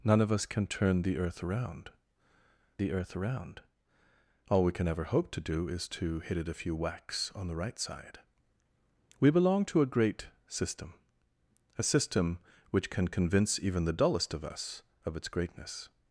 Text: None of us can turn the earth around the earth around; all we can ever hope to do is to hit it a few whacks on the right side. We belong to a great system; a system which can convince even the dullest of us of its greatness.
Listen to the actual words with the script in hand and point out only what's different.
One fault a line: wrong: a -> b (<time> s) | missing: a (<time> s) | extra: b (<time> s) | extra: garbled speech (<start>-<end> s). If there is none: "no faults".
no faults